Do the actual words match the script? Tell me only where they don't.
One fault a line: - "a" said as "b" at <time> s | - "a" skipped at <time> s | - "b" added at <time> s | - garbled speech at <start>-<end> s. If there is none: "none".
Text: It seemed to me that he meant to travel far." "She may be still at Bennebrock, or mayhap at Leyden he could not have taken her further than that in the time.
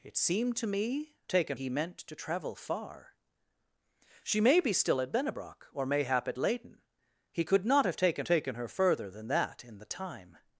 - "that" said as "taken" at 1.3 s
- "taken" added at 8.2 s